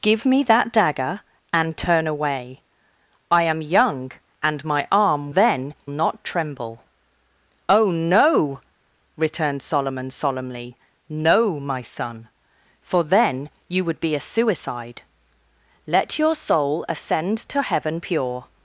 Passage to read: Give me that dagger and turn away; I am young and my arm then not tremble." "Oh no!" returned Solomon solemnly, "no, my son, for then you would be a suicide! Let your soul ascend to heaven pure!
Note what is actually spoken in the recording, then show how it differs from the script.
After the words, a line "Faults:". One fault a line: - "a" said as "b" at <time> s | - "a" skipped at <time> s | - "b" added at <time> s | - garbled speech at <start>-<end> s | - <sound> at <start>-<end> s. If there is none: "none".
Give me that dagger and turn away; I am young and my arm then not tremble." "Oh no!" returned Solomon solemnly, "no, my son, for then you would be a suicide! Let your soul ascend to heaven pure!
Faults:
none